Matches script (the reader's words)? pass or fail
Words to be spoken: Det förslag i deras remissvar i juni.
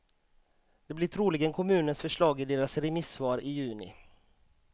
fail